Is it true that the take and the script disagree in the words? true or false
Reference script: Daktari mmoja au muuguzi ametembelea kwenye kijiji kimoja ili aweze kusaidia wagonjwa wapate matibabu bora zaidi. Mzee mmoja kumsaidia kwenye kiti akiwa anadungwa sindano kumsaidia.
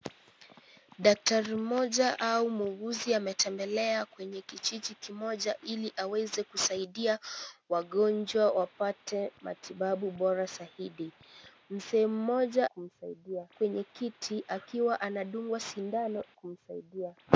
false